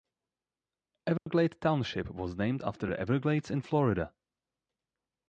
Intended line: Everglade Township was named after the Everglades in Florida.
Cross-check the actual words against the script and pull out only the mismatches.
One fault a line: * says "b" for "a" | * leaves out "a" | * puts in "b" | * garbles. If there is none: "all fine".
all fine